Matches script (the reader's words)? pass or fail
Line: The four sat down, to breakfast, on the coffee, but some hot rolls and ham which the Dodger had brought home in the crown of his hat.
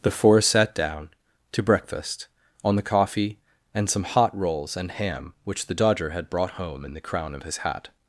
fail